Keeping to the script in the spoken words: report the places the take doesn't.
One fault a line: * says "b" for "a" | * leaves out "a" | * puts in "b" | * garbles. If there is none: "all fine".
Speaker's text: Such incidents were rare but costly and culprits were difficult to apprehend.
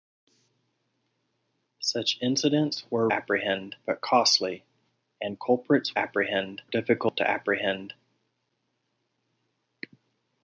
* says "apprehend" for "rare"
* says "apprehend" for "were"